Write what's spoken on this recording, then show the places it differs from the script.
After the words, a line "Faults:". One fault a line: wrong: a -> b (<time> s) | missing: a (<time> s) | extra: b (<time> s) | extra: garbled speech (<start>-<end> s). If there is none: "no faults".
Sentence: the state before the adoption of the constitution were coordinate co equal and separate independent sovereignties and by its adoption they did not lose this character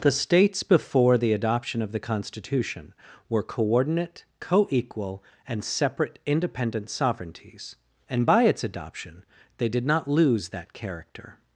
the states before the adoption of the constitution were coordinate co equal and separate independent sovereignties and by its adoption they did not lose that character
Faults:
wrong: state -> states (0.1 s)
wrong: this -> that (10.5 s)